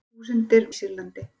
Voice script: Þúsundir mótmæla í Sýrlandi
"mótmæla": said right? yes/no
no